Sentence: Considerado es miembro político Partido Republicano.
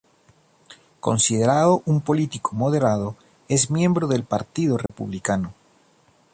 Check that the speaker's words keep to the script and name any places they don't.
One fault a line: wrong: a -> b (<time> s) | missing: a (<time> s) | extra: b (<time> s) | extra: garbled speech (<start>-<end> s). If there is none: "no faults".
extra: un político moderado (1.9 s)
wrong: político -> del (4.1 s)